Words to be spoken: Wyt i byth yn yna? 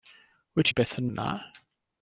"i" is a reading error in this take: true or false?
false